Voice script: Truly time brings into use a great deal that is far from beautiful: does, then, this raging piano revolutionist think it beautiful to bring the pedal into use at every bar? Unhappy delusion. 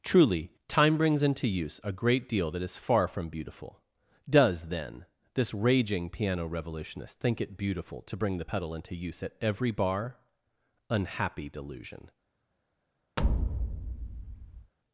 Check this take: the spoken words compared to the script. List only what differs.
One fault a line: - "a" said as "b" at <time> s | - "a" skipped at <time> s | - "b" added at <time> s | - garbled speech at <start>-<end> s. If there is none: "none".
none